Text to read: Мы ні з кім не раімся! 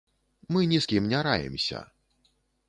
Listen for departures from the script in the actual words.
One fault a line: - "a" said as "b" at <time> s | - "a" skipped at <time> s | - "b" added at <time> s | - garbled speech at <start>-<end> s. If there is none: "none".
none